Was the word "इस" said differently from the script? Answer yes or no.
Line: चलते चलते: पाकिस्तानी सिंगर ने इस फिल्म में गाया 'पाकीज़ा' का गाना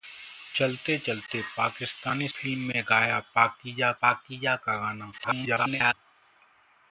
yes